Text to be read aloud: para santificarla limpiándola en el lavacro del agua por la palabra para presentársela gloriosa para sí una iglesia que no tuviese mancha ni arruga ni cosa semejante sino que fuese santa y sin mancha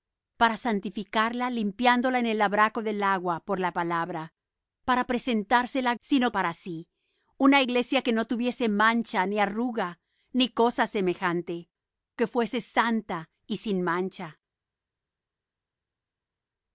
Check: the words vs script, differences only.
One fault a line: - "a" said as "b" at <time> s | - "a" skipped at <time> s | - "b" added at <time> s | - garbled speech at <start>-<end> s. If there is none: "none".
- "gloriosa" said as "sino" at 6.0 s
- "sino" skipped at 11.7 s